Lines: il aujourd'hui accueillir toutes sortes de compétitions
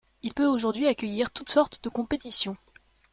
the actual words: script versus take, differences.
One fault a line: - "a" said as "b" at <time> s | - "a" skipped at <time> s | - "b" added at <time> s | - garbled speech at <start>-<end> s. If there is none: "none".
- "peut" added at 0.3 s